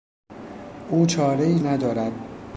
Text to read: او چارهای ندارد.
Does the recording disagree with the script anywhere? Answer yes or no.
no